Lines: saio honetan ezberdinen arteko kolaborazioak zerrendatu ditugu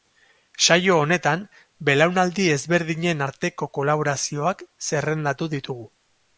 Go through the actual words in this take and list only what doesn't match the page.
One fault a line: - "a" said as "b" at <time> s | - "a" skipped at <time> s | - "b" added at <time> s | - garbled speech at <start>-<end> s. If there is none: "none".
- "belaunaldi" added at 1.9 s